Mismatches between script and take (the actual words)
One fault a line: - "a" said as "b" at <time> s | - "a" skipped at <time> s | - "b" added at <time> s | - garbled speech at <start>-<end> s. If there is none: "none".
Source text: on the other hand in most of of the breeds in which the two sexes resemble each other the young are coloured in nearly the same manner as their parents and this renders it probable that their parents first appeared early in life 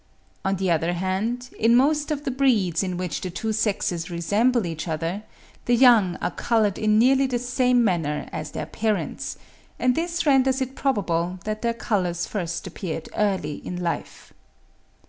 - "of" skipped at 2.2 s
- "parents" said as "colours" at 11.7 s